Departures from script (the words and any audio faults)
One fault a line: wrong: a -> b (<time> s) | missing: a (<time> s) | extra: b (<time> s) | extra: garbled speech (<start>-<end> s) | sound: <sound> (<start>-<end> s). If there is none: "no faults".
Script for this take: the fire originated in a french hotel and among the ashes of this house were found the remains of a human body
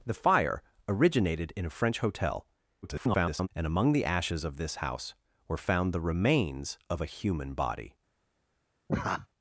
extra: garbled speech (2.8-3.5 s)
sound: laugh (8.9-9.3 s)